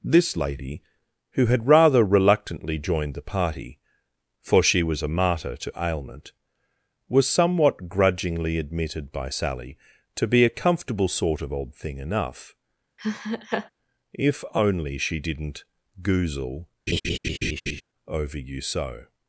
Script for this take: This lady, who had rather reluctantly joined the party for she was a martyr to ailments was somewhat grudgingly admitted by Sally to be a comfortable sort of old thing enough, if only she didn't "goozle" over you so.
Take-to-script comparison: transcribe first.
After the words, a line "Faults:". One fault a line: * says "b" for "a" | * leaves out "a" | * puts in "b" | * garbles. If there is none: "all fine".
This lady, who had rather reluctantly joined the party for she was a martyr to ailment was somewhat grudgingly admitted by Sally to be a comfortable sort of old thing enough, if only she didn't "goozle" over you so.
Faults:
* says "ailment" for "ailments"